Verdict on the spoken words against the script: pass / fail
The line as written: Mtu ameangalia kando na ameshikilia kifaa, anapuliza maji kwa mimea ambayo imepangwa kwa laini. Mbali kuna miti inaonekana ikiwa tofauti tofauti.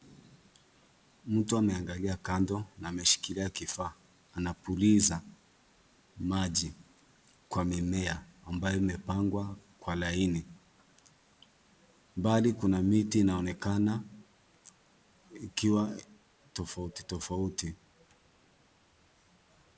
pass